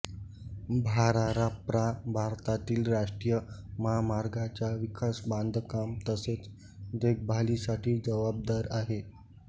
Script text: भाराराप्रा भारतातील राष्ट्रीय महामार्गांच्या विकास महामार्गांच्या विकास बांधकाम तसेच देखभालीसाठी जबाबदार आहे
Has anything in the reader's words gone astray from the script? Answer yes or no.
yes